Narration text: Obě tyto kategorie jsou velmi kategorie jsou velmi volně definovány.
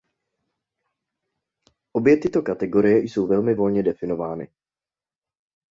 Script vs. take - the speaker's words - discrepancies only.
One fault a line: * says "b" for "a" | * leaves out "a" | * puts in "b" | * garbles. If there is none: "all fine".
* leaves out "kategorie jsou velmi"